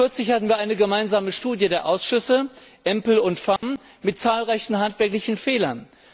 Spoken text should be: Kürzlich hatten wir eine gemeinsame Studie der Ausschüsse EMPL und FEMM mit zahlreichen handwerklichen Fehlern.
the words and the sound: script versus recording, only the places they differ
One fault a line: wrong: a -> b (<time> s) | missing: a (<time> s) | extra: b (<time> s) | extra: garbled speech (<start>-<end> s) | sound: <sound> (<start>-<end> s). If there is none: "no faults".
sound: dropout (3.6-3.6 s)